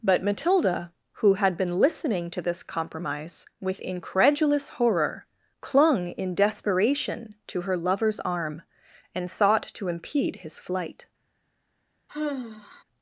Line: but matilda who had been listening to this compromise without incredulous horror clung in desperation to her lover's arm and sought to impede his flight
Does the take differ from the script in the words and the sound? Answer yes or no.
yes